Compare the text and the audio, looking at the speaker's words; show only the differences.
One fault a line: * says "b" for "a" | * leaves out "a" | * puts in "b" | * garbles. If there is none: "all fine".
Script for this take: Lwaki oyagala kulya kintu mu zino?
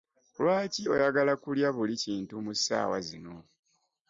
* puts in "buli"
* puts in "ssaawa"